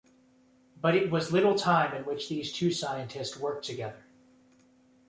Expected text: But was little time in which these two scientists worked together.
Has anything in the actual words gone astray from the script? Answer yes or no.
yes